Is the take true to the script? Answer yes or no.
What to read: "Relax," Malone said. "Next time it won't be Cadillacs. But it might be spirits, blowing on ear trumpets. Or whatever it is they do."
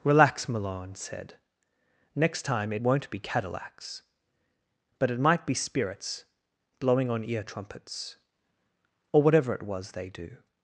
no